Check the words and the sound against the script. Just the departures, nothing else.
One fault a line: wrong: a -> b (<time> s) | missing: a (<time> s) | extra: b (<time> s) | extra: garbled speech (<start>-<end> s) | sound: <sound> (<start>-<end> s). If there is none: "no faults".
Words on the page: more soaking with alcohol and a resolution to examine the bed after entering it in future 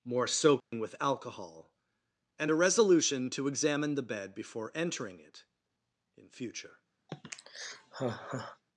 sound: dropout (0.6-0.7 s)
wrong: after -> before (4.4 s)
sound: sigh (7.1-8.6 s)